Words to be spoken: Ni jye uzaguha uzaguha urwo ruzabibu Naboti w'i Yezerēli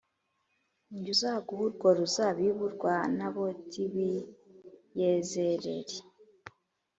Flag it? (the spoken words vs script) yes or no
yes